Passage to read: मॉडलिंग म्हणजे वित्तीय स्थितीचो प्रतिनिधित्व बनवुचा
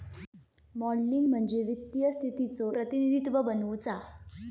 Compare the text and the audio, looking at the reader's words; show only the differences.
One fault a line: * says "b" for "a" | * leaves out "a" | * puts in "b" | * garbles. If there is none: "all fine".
all fine